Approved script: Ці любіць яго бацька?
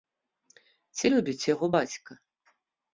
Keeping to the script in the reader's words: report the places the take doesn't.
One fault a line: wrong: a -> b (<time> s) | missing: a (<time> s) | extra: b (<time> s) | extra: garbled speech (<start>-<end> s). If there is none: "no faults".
no faults